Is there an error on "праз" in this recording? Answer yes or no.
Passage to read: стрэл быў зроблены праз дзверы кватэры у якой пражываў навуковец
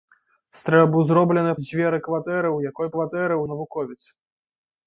yes